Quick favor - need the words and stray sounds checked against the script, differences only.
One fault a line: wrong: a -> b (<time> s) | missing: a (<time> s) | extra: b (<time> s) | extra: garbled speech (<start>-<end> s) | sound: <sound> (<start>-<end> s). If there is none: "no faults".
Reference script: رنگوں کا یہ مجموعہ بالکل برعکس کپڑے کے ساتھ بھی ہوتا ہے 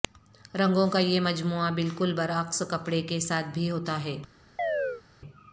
sound: chirp (4.6-5.0 s)